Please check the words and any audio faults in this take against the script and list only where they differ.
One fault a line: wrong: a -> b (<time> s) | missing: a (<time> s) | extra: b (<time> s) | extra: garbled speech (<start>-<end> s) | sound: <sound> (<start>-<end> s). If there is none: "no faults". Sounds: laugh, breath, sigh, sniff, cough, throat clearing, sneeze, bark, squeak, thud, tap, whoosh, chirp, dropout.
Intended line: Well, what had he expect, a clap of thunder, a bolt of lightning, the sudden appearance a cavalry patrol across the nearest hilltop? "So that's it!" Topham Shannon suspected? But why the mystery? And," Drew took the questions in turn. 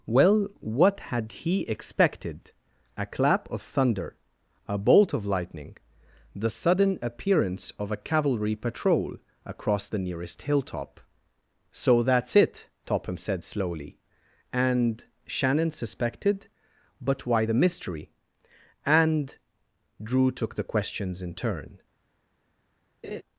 wrong: expect -> expected (1.7 s)
extra: of (7.8 s)
extra: said slowly And (13.2 s)
sound: laugh (23.0-23.2 s)